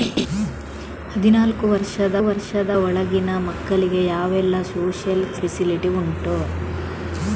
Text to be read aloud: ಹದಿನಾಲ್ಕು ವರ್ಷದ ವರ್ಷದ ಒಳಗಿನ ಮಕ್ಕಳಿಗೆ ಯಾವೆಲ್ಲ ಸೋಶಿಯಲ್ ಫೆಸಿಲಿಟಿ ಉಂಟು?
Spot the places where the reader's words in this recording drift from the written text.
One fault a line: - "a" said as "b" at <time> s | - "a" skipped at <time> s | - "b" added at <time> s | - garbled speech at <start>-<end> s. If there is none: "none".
none